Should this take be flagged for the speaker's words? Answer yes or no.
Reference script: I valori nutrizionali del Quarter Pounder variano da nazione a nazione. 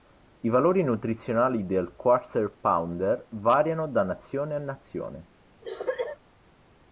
no